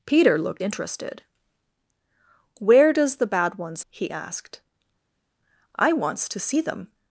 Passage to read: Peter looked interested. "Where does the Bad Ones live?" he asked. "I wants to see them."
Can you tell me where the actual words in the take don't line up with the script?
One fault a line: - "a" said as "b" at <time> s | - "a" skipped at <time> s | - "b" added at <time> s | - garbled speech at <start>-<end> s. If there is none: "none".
- "live" skipped at 3.8 s